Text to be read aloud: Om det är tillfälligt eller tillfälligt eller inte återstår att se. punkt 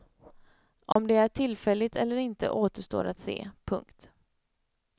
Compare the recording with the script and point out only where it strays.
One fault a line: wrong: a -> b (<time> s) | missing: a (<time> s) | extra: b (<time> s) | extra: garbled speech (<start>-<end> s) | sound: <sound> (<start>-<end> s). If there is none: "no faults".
sound: dropout (0.9-1.0 s)
missing: tillfälligt eller (2.1 s)